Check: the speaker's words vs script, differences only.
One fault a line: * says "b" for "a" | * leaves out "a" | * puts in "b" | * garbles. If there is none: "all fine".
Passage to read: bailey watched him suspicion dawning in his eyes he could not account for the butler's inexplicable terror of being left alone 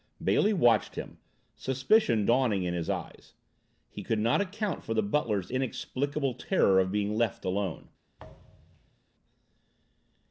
all fine